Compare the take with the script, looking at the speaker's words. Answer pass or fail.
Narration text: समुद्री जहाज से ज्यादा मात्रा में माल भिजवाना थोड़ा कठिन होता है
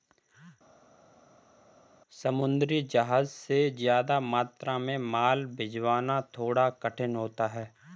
pass